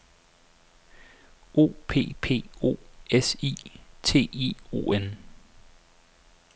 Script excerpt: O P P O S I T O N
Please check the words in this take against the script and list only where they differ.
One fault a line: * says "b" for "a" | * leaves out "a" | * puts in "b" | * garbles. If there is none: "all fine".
* puts in "I"